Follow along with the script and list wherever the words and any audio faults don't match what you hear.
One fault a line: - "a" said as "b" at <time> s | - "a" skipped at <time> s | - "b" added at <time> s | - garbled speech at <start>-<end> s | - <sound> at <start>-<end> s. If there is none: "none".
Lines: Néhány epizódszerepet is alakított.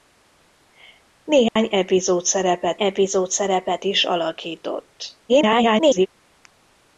- dropout at 1.5-1.6 s
- "epizódszerepet" added at 2.8 s
- garbled speech at 5.3-6.1 s